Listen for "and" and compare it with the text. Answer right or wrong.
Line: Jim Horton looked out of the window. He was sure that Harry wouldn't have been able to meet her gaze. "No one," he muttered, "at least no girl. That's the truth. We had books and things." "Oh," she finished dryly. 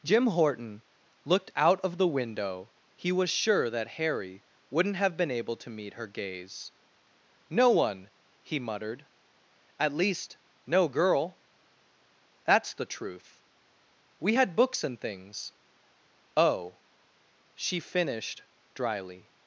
right